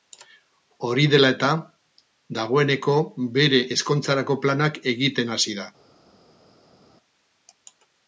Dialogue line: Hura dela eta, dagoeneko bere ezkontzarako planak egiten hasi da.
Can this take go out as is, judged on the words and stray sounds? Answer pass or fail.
fail